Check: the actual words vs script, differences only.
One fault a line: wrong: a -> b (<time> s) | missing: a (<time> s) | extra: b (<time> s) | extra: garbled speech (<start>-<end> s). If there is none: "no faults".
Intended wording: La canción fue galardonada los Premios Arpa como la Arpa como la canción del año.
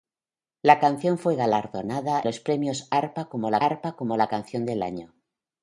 no faults